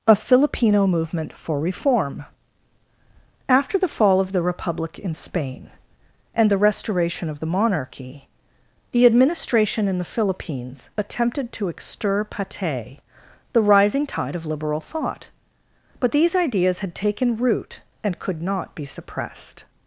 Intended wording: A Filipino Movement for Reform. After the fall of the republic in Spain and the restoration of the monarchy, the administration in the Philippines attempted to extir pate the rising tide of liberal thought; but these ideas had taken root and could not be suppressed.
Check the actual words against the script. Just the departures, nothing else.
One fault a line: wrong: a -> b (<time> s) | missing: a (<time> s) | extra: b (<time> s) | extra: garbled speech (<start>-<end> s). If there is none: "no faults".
no faults